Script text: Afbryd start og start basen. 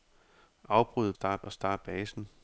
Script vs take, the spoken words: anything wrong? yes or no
no